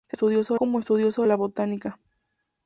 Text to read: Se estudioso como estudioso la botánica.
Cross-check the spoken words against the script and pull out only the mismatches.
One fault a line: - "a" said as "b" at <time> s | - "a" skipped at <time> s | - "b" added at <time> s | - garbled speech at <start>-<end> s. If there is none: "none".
none